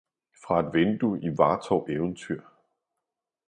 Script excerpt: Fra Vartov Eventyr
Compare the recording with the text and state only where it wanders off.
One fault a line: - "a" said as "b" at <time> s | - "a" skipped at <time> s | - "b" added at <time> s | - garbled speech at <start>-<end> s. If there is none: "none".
- "et vindue i" added at 0.6 s